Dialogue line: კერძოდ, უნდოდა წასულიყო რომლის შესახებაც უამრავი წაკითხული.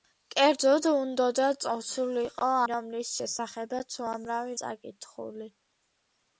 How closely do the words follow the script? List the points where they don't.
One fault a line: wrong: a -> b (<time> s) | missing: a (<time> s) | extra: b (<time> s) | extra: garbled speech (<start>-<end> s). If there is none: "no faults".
no faults